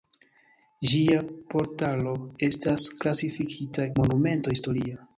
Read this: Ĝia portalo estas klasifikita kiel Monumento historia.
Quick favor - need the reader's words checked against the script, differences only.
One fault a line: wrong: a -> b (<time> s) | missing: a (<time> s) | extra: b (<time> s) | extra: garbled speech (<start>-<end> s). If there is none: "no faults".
missing: kiel (3.9 s)